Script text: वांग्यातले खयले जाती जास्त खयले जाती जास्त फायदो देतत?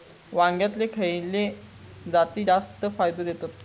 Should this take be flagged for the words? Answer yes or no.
yes